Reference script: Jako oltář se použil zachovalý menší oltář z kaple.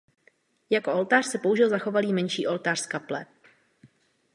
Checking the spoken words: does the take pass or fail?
pass